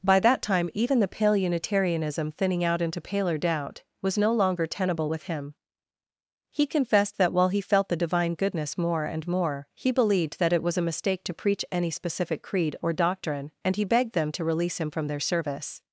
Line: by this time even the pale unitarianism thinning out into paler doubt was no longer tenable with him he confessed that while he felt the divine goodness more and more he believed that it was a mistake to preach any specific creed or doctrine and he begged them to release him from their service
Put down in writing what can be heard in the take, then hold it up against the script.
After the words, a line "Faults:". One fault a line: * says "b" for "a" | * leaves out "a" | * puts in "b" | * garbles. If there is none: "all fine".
by that time even the pale unitarianism thinning out into paler doubt was no longer tenable with him he confessed that while he felt the divine goodness more and more he believed that it was a mistake to preach any specific creed or doctrine and he begged them to release him from their service
Faults:
* says "that" for "this"